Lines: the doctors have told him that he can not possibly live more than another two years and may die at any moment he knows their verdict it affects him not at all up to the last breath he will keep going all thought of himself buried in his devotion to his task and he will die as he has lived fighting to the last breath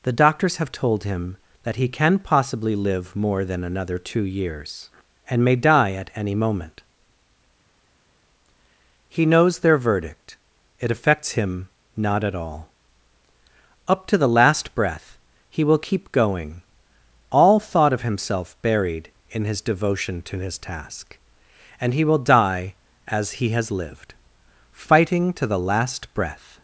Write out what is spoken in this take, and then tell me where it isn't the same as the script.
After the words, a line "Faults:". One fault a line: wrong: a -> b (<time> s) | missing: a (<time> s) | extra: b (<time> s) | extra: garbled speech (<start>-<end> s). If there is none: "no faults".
the doctors have told him that he can possibly live more than another two years and may die at any moment he knows their verdict it affects him not at all up to the last breath he will keep going all thought of himself buried in his devotion to his task and he will die as he has lived fighting to the last breath
Faults:
missing: not (2.2 s)